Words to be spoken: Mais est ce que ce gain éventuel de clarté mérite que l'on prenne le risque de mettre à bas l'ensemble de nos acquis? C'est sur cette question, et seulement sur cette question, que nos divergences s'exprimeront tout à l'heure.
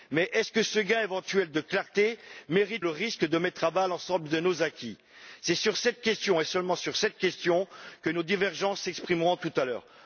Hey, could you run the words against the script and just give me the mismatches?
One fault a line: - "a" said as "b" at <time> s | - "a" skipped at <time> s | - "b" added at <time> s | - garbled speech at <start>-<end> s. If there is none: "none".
- "que l'on prenne" skipped at 2.9 s